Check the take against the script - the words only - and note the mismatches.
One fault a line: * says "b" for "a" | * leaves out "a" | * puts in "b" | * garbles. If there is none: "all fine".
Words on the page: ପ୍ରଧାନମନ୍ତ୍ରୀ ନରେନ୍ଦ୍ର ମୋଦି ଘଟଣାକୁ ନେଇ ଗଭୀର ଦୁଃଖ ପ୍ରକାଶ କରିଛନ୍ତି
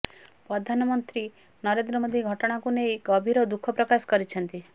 all fine